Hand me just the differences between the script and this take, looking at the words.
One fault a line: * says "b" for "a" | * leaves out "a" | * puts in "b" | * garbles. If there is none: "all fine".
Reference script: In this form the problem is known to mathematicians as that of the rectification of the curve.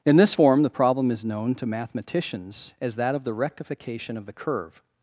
all fine